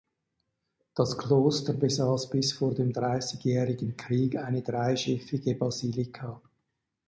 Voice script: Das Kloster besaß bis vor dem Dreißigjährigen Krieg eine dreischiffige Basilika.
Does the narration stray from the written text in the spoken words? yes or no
no